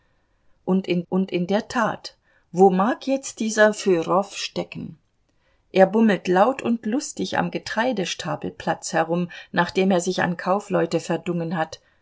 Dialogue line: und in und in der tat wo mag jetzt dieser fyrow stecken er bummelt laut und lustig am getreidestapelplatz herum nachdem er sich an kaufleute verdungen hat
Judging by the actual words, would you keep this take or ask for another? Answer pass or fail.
pass